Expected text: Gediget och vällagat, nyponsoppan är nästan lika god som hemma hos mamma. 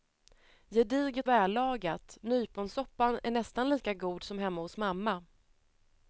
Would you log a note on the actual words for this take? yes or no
yes